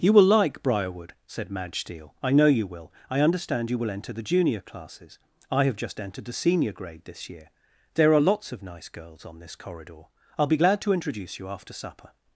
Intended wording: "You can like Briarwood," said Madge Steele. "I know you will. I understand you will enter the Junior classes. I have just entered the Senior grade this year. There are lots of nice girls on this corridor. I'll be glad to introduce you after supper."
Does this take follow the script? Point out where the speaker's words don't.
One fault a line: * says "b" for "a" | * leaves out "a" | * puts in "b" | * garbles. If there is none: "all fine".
* says "will" for "can"